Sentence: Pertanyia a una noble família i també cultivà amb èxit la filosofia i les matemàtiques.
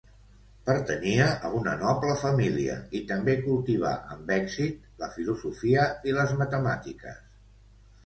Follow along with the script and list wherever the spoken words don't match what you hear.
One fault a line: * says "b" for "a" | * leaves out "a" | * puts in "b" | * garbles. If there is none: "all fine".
all fine